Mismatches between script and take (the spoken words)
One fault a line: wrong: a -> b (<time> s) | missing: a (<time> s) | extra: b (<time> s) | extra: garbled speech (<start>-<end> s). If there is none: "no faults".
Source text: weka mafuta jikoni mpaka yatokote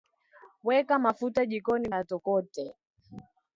missing: mpaka (1.9 s)